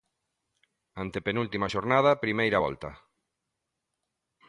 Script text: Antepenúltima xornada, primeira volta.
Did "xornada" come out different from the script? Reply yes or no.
no